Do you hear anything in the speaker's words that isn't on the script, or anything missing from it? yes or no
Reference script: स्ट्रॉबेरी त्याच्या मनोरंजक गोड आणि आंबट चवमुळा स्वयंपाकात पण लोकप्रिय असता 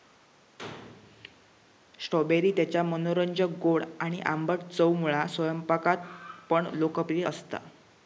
no